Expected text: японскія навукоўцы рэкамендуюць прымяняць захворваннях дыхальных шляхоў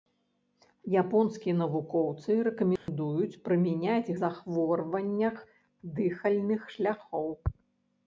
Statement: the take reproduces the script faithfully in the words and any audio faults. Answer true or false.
false